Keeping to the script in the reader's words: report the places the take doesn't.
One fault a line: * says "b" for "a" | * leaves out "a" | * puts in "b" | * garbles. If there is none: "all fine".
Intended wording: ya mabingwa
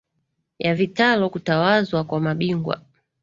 * puts in "vitalo kutawazwa kwa"